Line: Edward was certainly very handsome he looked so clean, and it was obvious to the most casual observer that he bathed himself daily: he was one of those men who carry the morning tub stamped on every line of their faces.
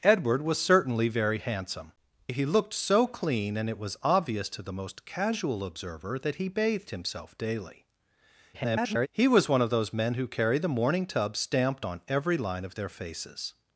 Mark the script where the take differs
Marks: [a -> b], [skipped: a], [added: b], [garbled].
Edward was certainly very handsome he looked so clean, and it was obvious to the most casual observer that he bathed himself daily: [garbled] he was one of those men who carry the morning tub stamped on every line of their faces.